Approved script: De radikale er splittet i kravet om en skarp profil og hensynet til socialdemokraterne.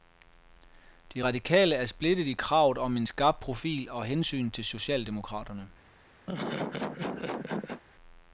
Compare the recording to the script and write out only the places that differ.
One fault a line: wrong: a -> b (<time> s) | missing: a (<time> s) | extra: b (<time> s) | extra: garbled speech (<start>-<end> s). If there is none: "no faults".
no faults